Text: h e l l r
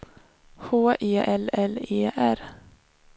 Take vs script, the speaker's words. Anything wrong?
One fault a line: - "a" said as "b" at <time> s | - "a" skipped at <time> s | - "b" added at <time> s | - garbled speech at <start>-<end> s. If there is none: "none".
- "e" added at 1.9 s